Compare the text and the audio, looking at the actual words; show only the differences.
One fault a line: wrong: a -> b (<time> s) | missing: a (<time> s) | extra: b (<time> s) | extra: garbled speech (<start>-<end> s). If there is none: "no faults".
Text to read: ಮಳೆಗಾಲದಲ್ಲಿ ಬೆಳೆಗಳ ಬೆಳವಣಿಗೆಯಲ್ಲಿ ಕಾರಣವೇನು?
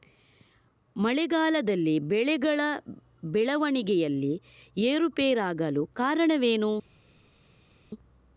extra: ಏರುಪೇರಾಗಲು (4.8 s)